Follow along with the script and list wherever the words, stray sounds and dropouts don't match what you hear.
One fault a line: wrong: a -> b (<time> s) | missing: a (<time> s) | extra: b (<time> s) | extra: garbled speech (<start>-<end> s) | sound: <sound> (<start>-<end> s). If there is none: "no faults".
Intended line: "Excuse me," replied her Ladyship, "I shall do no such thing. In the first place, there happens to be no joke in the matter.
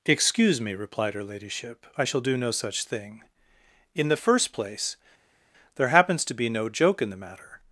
no faults